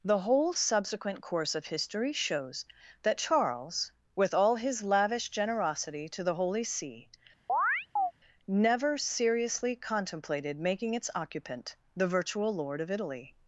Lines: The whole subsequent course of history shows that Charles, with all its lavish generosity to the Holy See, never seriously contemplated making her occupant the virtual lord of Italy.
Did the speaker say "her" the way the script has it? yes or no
no